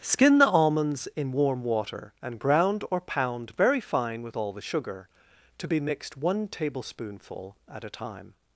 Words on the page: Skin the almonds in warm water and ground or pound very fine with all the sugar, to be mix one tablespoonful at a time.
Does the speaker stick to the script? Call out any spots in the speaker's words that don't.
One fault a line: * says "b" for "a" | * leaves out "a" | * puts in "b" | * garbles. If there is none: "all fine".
* says "mixed" for "mix"